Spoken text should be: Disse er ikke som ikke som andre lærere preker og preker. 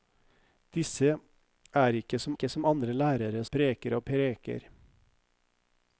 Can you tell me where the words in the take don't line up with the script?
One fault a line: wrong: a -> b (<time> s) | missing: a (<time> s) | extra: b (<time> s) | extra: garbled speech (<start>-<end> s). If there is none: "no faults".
no faults